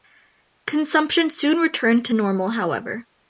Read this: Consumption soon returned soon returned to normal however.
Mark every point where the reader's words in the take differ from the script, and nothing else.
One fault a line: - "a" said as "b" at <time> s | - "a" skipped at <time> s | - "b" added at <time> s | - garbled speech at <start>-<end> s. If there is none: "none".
- "soon returned" skipped at 2.1 s